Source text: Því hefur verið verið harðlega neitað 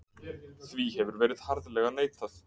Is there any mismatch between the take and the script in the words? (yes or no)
yes